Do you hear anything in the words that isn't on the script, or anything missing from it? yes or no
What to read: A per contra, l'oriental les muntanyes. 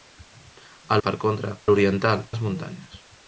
no